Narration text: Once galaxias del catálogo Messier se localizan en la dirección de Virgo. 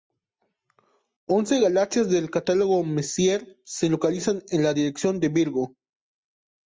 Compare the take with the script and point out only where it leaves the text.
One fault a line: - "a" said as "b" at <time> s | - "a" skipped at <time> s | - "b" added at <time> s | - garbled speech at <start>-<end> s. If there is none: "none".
none